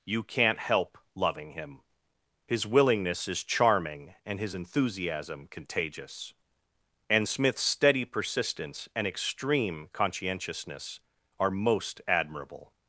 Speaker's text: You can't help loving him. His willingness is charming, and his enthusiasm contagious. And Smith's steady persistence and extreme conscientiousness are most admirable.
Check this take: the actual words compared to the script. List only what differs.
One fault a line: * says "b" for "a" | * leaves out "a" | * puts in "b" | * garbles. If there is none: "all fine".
all fine